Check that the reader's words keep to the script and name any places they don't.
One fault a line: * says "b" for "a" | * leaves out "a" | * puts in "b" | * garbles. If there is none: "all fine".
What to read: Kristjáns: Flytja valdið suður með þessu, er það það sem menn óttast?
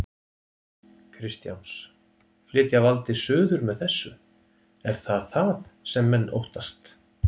all fine